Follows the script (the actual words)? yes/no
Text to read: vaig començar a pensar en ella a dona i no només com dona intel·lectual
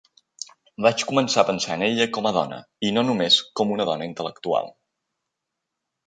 no